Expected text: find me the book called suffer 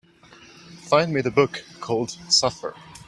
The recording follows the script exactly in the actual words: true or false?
true